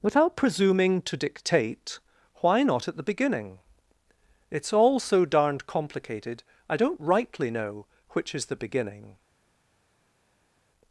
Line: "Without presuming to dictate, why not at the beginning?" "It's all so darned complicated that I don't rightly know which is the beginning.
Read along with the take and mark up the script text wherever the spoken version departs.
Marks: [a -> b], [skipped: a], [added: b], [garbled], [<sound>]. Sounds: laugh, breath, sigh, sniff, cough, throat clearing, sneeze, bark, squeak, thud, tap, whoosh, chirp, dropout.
"Without presuming to dictate, why not at the beginning?" "It's all so darned complicated [skipped: that] I don't rightly know which is the beginning.